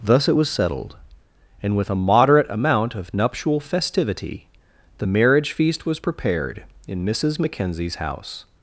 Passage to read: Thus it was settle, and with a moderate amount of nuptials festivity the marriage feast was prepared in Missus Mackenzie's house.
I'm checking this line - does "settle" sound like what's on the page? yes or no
no